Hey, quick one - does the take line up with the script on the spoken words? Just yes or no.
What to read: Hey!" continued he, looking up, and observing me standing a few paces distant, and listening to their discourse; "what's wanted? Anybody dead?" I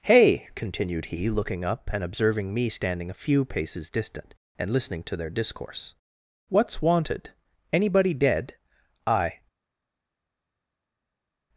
yes